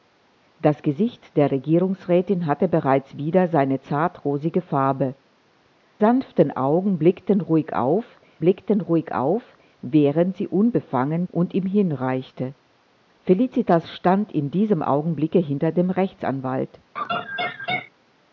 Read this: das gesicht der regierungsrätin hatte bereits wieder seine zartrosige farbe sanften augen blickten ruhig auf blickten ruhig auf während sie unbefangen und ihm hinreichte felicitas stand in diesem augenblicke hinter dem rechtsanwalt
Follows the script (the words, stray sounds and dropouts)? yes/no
no